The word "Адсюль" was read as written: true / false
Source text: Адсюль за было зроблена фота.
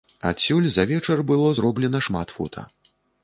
true